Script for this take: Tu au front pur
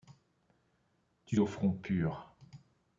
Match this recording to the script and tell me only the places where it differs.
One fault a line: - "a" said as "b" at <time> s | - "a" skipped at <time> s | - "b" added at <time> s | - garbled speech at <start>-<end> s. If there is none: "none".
none